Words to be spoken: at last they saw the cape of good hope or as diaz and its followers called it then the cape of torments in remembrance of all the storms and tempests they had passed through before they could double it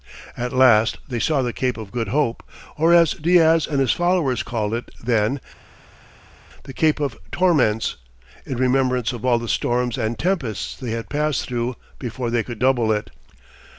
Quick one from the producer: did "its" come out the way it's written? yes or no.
no